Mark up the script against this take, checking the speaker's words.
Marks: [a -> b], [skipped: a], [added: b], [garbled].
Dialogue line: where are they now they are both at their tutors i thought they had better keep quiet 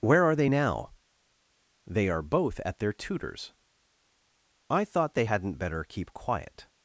where are they now they are both at their tutors i thought they [had -> hadn't] better keep quiet